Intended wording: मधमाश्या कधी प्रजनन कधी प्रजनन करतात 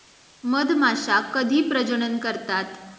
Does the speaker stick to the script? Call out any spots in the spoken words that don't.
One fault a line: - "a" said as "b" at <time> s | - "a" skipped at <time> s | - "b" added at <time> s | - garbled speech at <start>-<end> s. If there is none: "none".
- "कधी प्रजनन" skipped at 2.2 s